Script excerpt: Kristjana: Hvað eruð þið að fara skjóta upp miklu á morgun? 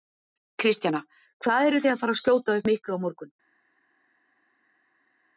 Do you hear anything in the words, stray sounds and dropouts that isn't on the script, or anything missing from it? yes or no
no